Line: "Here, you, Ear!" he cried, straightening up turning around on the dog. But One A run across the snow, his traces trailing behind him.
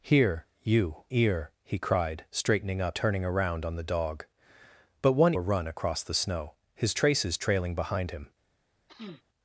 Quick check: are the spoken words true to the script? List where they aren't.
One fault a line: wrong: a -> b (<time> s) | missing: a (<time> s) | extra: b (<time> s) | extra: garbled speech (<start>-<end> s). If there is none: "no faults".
no faults